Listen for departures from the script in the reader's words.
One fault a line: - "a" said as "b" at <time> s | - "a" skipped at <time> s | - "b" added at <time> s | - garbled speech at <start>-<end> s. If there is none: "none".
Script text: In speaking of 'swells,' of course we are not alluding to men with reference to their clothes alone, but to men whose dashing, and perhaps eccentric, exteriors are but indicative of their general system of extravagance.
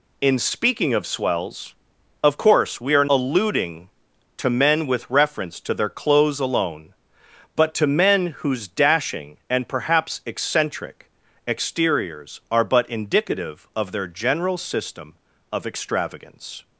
- "not" skipped at 3.0 s